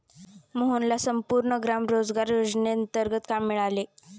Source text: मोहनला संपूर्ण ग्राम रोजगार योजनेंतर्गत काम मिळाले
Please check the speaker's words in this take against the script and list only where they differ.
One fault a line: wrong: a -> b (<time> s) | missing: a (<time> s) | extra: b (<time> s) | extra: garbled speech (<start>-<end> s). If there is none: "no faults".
no faults